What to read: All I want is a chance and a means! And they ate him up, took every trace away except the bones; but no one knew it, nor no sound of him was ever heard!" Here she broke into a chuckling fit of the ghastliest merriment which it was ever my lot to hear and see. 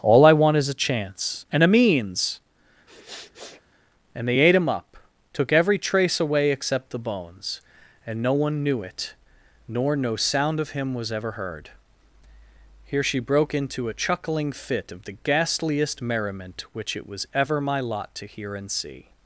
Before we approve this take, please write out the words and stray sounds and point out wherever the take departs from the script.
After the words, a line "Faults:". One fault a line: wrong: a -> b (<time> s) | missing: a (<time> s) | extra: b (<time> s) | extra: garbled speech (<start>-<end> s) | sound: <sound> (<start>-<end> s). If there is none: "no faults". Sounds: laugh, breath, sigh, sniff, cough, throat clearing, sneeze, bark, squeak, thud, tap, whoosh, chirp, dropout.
All I want is a chance and a means! And they ate him up, took every trace away except the bones; and no one knew it, nor no sound of him was ever heard!" Here she broke into a chuckling fit of the ghastliest merriment which it was ever my lot to hear and see.
Faults:
sound: sniff (2.9-3.6 s)
wrong: but -> and (8.0 s)